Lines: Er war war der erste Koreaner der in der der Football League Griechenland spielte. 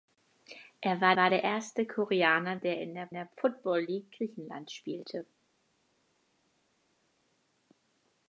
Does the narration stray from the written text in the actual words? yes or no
no